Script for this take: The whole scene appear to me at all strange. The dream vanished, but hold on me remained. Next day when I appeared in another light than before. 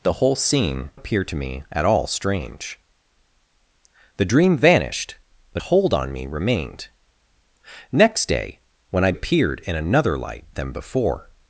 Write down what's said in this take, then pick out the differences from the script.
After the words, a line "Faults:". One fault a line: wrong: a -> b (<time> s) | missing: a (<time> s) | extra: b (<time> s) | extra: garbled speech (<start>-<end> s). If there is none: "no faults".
The whole scene appear to me at all strange. The dream vanished, but hold on me remained. Next day when I appeared in another light than before.
Faults:
no faults